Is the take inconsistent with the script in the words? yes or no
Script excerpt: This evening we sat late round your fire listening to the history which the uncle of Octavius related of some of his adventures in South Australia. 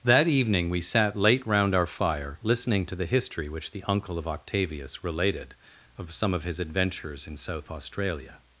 yes